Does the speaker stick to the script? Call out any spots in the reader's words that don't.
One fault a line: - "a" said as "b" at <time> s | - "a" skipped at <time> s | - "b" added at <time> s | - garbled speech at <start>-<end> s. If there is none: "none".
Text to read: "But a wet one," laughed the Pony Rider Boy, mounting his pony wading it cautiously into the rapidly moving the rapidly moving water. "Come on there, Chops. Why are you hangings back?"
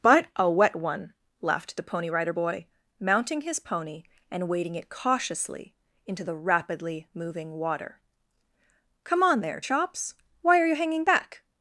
- "and" added at 4.3 s
- "the rapidly moving" skipped at 7.5 s
- "hangings" said as "hanging" at 10.7 s